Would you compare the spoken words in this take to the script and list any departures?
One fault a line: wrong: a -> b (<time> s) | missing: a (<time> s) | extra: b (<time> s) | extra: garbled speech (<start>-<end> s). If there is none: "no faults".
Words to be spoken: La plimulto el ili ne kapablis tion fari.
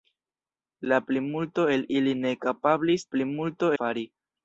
wrong: tion -> plimulto (3.1 s)